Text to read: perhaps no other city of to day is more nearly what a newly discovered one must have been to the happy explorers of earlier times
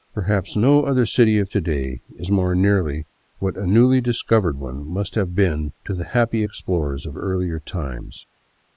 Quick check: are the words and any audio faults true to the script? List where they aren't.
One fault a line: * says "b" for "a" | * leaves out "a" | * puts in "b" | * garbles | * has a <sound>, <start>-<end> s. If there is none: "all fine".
all fine